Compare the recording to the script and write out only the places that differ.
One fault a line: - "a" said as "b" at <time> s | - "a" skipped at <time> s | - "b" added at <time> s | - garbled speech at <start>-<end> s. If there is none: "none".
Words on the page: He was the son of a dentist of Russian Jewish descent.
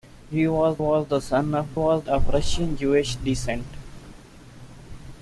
- "was" added at 0.8 s
- "dentist" said as "was" at 1.7 s